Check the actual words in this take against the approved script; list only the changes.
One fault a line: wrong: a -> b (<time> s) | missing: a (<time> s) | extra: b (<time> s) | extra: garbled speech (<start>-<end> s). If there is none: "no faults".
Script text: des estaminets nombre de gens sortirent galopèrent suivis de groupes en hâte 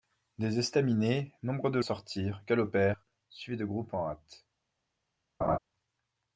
missing: gens (1.8 s)